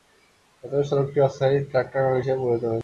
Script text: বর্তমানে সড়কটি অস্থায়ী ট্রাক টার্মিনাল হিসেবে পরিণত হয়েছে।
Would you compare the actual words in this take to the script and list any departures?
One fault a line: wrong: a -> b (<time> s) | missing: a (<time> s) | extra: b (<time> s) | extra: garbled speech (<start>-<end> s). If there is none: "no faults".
no faults